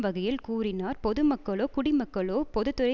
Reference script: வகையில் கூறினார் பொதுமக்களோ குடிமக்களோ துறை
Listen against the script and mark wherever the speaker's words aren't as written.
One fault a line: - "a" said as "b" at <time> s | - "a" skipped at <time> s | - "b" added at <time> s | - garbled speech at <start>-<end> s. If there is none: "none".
- "பொது" added at 2.5 s